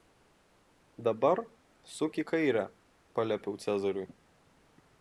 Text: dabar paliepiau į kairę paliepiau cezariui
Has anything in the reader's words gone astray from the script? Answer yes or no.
yes